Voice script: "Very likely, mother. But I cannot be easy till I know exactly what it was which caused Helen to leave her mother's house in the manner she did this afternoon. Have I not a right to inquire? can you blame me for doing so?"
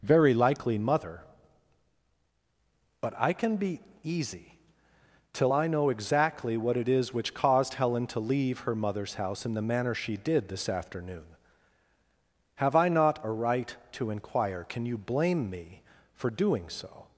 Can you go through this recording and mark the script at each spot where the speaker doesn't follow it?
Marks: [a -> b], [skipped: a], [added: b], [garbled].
"Very likely, mother. But I [cannot -> can] be easy till I know exactly what it [was -> is] which caused Helen to leave her mother's house in the manner she did this afternoon. Have I not a right to inquire? can you blame me for doing so?"